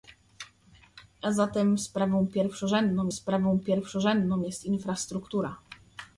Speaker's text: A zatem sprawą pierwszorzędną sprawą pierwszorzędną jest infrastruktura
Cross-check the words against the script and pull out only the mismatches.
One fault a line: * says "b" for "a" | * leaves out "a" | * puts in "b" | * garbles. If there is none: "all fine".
all fine